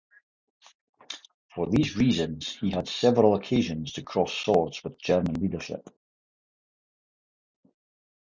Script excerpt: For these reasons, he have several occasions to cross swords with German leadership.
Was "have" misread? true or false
true